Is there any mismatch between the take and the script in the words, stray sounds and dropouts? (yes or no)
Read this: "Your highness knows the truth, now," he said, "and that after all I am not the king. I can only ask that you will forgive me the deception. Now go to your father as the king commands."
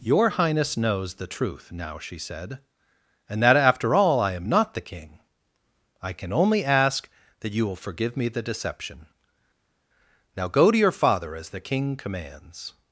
yes